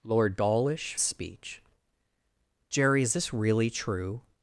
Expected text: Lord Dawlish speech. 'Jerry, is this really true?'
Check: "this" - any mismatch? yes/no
no